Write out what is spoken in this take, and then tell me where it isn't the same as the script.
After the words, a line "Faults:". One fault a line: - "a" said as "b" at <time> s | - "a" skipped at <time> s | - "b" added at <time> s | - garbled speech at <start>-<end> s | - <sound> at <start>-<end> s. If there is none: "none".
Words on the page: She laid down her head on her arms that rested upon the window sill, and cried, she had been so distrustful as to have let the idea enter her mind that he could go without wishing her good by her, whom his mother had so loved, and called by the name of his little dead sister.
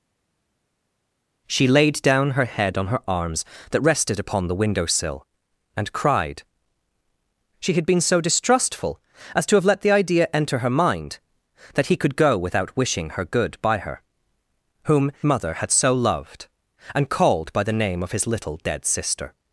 She laid down her head on her arms that rested upon the window sill, and cried, she had been so distrustful as to have let the idea enter her mind that he could go without wishing her good by her, whom mother had so loved, and called by the name of his little dead sister.
Faults:
- "his" skipped at 15.1 s